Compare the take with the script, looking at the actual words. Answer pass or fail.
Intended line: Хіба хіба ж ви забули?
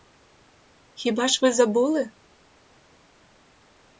fail